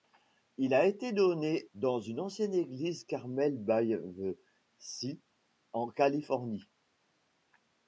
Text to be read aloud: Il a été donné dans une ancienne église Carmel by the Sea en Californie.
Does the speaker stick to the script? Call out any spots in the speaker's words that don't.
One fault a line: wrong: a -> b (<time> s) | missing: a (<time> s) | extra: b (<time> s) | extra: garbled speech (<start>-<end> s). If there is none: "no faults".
no faults